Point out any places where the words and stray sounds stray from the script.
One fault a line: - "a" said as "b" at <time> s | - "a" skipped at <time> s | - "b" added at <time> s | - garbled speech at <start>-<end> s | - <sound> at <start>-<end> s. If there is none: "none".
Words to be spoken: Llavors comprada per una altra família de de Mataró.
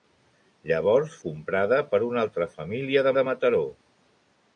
none